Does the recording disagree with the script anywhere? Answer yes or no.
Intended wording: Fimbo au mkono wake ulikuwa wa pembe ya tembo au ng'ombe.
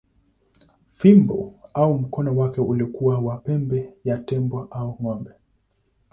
no